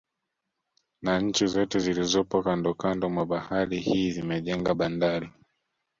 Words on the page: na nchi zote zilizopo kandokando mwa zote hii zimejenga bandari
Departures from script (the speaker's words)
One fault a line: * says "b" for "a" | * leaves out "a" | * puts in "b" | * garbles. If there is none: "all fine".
* says "bahari" for "zote"